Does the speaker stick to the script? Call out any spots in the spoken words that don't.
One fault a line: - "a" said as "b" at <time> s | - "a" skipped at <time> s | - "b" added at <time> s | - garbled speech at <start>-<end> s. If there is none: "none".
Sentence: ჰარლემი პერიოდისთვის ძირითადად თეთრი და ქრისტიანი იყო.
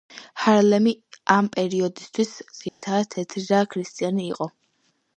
- "ამ" added at 1.4 s